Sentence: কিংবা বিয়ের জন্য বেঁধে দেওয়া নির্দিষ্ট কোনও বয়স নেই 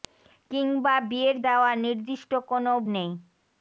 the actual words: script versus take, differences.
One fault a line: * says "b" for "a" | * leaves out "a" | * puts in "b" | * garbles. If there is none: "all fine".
* leaves out "জন্য বেঁধে"
* leaves out "বয়স"